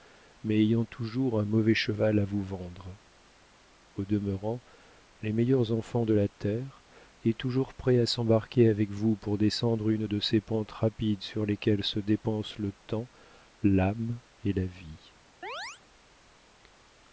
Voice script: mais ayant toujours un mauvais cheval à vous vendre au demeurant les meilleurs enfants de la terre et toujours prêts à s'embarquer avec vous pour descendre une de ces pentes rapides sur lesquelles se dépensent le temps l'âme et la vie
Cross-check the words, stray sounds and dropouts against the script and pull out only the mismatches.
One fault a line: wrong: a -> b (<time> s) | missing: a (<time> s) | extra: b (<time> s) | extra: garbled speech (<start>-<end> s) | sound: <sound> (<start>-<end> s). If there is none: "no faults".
sound: chirp (15.4-15.8 s)